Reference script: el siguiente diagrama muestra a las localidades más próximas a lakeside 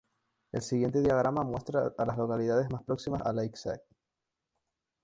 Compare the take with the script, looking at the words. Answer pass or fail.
pass